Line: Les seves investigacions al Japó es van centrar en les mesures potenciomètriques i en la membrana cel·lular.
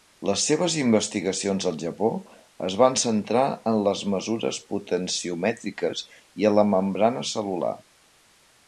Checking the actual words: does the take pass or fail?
pass